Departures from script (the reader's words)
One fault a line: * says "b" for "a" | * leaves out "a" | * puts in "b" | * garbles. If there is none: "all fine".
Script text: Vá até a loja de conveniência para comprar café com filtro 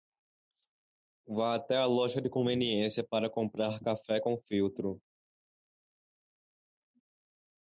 all fine